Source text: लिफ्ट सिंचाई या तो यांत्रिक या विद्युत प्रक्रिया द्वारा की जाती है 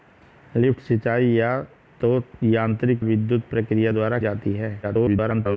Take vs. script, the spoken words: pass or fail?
fail